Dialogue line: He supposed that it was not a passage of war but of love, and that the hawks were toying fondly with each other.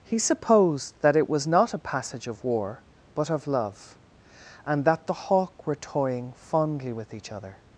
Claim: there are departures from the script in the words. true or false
true